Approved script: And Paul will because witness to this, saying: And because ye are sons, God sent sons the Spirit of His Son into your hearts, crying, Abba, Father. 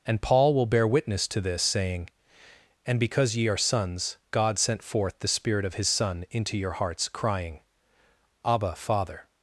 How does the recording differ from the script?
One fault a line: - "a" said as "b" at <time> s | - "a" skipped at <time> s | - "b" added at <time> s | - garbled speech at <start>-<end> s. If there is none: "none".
- "because" said as "bear" at 0.7 s
- "sons" said as "forth" at 4.8 s